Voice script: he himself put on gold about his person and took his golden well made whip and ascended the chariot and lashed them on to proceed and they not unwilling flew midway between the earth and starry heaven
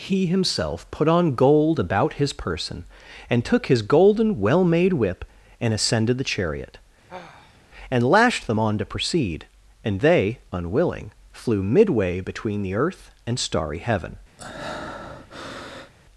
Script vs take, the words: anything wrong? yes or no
yes